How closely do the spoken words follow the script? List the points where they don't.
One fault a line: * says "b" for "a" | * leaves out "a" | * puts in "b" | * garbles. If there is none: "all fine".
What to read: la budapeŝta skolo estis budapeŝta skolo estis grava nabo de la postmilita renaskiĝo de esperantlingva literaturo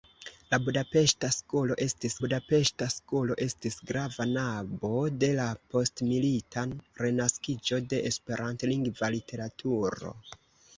all fine